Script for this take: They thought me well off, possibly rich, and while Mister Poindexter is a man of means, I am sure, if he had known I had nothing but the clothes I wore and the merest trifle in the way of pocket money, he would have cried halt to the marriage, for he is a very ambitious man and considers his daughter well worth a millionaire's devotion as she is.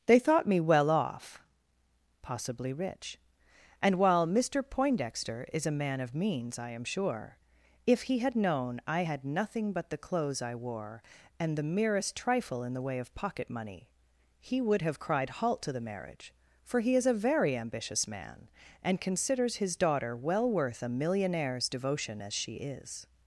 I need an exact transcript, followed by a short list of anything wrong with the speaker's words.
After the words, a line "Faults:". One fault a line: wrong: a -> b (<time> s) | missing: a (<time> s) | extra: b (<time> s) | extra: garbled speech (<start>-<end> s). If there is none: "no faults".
They thought me well off, possibly rich, and while Mister Poindexter is a man of means, I am sure, if he had known I had nothing but the clothes I wore and the merest trifle in the way of pocket money, he would have cried halt to the marriage, for he is a very ambitious man and considers his daughter well worth a millionaire's devotion as she is.
Faults:
no faults